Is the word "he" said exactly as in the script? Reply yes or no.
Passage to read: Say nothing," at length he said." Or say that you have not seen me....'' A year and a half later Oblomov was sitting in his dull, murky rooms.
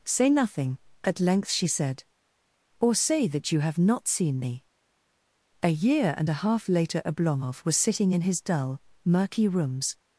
no